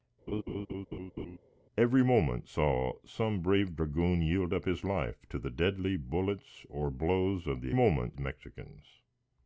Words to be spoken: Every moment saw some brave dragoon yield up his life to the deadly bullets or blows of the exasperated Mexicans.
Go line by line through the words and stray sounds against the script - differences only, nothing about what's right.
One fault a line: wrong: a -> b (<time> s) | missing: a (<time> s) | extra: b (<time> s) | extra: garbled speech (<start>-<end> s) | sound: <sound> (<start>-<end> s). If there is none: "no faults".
sound: laugh (0.3-1.4 s)
wrong: exasperated -> moment (7.7 s)